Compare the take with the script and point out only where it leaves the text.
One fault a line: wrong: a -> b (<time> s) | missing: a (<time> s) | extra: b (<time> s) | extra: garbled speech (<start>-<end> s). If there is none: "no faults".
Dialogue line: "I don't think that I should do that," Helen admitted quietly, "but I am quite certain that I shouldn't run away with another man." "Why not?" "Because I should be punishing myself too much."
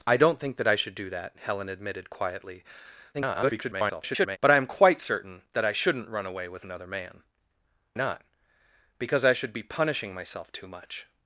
extra: garbled speech (3.1-4.4 s)
missing: Why (7.2 s)